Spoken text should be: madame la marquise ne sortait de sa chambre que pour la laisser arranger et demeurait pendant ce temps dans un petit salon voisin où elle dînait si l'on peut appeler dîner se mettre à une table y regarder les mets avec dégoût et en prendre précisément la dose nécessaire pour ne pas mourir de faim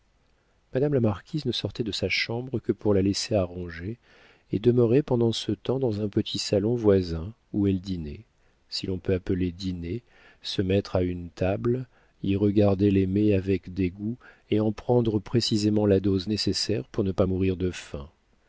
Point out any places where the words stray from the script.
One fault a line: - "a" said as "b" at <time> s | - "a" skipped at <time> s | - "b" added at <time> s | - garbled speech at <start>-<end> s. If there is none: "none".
none